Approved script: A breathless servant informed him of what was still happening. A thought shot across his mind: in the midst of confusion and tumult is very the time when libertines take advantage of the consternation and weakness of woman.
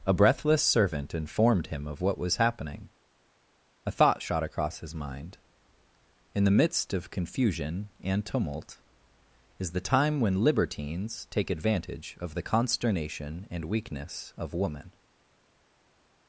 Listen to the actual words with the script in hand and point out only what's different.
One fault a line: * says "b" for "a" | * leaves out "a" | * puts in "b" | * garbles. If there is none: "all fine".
* leaves out "still"
* leaves out "very"